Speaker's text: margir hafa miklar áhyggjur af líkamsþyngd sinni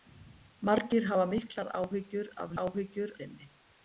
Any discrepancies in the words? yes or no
yes